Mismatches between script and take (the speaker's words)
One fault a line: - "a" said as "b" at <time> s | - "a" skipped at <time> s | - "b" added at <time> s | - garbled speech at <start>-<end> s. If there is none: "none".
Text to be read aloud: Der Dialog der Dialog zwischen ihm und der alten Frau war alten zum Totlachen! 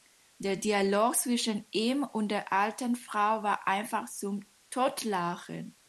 - "der Dialog" skipped at 1.1 s
- "alten" said as "einfach" at 3.7 s